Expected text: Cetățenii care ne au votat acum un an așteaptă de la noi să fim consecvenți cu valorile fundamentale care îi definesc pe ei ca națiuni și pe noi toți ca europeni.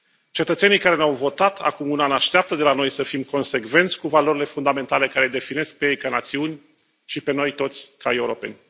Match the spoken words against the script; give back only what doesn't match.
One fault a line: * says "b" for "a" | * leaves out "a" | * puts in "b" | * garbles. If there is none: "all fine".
all fine